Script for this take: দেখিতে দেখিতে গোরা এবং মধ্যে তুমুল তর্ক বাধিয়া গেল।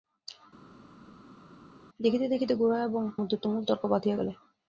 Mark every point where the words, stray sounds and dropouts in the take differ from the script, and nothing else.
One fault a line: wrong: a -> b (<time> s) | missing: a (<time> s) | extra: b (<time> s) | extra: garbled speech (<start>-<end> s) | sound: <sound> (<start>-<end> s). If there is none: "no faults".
no faults